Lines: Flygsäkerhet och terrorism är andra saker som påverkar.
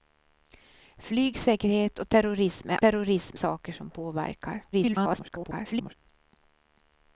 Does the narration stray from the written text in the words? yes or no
yes